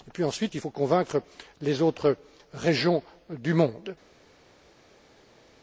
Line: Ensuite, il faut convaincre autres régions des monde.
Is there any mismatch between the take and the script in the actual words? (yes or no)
yes